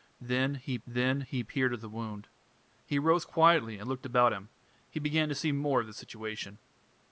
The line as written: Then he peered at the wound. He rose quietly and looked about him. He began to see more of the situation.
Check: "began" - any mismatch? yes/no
no